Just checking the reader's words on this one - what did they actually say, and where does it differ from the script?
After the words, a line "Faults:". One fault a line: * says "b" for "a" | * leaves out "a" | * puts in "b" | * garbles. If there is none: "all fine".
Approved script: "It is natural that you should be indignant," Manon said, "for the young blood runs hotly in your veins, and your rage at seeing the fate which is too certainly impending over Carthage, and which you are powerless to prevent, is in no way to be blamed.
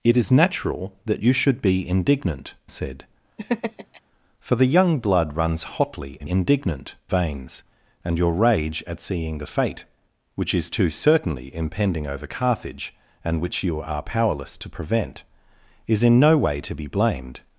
"It is natural that you should be indignant," Said, "for the young blood runs hotly in indignant veins, and your rage at seeing the fate which is too certainly impending over Carthage, and which you are powerless to prevent, is in no way to be blamed.
Faults:
* leaves out "Manon"
* says "indignant" for "your"